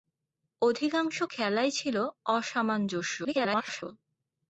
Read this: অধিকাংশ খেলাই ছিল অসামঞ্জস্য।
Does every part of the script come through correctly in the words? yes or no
no